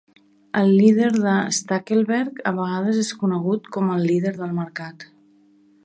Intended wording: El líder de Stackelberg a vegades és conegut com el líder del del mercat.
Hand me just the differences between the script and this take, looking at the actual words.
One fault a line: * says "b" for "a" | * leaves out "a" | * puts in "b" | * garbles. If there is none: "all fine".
* leaves out "del"